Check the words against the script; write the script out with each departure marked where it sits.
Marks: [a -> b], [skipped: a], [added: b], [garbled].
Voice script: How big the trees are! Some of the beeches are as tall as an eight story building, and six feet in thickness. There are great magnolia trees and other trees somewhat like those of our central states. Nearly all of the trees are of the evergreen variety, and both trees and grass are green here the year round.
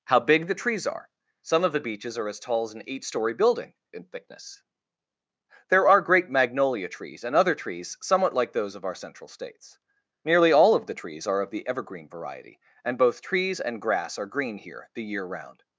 How big the trees are! Some of the beeches are as tall as an eight story building, [skipped: and six feet] in thickness. There are great magnolia trees and other trees somewhat like those of our central states. Nearly all of the trees are of the evergreen variety, and both trees and grass are green here the year round.